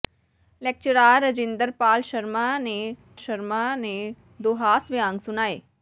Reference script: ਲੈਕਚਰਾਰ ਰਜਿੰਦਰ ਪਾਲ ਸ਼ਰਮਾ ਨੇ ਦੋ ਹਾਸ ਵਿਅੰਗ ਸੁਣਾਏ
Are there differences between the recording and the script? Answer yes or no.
yes